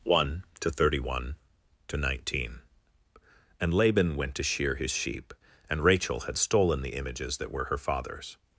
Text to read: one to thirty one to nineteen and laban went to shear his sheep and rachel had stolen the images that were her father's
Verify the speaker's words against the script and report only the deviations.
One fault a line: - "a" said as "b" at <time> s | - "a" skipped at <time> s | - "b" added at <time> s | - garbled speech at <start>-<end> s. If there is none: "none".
none